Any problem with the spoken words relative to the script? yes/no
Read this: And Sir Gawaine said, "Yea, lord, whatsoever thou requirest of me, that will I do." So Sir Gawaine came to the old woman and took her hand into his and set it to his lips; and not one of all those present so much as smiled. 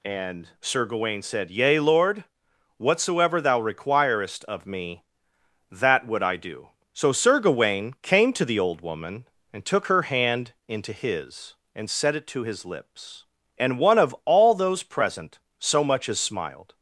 yes